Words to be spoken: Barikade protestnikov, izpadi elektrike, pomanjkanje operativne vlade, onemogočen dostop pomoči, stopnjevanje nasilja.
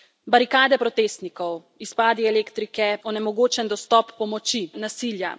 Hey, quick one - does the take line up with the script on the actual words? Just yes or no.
no